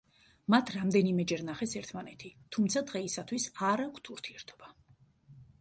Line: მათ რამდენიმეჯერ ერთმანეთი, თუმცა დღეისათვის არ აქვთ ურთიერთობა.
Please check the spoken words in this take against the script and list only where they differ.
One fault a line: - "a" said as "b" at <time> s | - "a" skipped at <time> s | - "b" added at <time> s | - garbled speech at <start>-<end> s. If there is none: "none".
- "ნახეს" added at 1.5 s